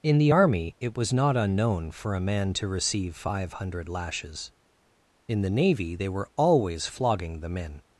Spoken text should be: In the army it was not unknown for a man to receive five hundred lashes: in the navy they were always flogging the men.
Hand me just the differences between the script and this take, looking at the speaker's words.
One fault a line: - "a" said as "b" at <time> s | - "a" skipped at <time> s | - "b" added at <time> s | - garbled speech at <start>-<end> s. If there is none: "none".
none